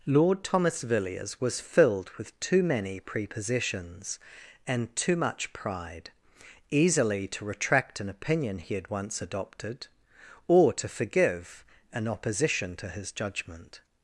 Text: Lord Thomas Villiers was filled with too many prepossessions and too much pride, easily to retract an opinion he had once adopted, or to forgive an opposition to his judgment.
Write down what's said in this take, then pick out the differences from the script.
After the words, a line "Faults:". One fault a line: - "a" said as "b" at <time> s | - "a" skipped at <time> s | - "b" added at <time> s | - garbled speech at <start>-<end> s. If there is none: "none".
Lord Thomas Villiers was filled with too many prepossessions and too much pride, easily to retract an opinion he had once adopted, or to forgive an opposition to his judgment.
Faults:
none